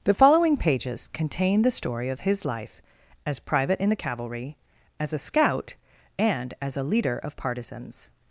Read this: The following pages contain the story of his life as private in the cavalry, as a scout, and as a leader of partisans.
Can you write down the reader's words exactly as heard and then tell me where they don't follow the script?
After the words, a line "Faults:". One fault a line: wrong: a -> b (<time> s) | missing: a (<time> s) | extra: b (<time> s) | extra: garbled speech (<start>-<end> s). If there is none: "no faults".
The following pages contain the story of his life as private in the cavalry, as a scout, and as a leader of partisans.
Faults:
no faults